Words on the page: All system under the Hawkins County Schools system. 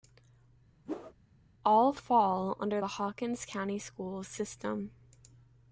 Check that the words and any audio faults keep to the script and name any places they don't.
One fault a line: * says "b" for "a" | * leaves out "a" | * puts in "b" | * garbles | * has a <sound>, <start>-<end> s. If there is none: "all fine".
* has a whoosh, 0.9-1.1 s
* says "fall" for "system"